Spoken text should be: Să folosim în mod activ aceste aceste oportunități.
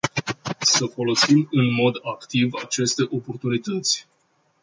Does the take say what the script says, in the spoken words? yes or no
no